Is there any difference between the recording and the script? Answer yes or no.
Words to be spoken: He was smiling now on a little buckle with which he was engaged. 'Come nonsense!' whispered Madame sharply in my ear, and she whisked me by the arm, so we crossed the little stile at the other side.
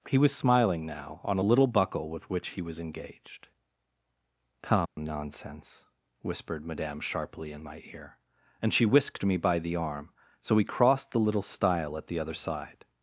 no